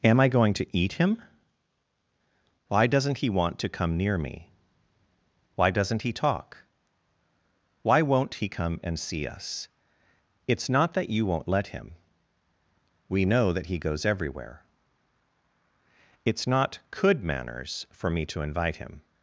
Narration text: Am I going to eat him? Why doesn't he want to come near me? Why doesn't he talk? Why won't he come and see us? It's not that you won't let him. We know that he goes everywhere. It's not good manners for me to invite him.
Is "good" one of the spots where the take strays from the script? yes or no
yes